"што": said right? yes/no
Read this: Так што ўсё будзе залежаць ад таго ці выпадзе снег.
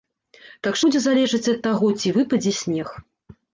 no